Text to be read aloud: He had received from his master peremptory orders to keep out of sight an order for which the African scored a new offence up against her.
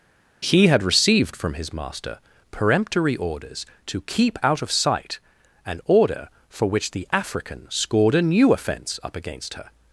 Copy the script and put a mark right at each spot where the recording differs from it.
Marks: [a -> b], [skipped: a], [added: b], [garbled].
He had received from his master peremptory orders to keep out of sight an order for which the African scored a new offence up against her.